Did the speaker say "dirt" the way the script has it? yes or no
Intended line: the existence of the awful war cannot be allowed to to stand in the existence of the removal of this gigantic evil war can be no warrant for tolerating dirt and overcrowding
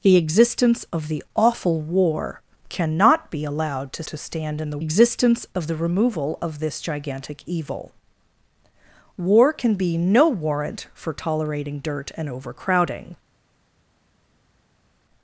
yes